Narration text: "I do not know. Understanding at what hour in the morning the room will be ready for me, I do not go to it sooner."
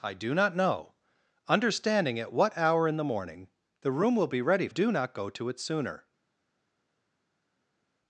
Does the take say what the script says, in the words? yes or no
no